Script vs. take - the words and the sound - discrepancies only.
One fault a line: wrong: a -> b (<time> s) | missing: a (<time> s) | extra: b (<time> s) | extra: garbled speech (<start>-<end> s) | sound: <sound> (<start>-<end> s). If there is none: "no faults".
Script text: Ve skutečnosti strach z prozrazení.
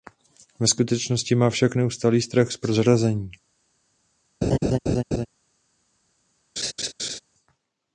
extra: má však neustálý (1.4 s)
sound: laugh (4.4-5.3 s)
sound: laugh (6.6-7.2 s)